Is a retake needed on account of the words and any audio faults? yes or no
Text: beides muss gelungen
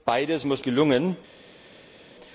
no